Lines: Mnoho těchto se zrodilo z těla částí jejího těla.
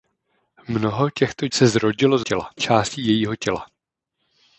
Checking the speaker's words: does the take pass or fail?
pass